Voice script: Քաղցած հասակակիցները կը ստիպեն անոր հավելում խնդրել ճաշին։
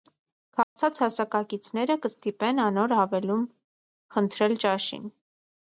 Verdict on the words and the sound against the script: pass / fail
fail